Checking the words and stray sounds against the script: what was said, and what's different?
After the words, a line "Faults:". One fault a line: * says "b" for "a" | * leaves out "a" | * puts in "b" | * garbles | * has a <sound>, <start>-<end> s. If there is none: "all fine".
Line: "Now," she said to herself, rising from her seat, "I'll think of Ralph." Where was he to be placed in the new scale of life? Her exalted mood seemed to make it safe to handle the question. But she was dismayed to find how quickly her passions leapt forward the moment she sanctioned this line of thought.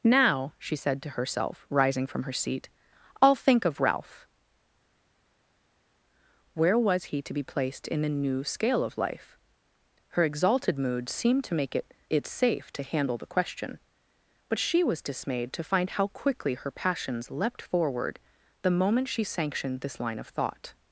"Now," she said to herself, rising from her seat, "I'll think of Ralph." Where was he to be placed in the new scale of life? Her exalted mood seemed to make it it safe to handle the question. But she was dismayed to find how quickly her passions leapt forward the moment she sanctioned this line of thought.
Faults:
* puts in "it"